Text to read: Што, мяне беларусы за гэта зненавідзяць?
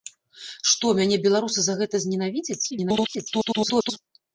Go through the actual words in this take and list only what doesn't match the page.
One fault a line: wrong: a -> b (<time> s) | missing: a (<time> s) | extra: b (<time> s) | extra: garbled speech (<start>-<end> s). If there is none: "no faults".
extra: garbled speech (2.7-4.0 s)